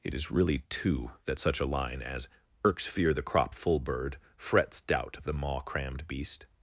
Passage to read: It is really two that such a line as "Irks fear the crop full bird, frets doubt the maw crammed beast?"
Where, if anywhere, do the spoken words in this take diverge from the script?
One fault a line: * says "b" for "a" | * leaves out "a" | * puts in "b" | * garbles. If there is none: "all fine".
all fine